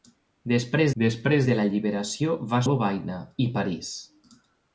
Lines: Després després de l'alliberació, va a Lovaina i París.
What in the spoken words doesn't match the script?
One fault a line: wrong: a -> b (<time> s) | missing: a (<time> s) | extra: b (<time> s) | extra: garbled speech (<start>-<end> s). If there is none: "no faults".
no faults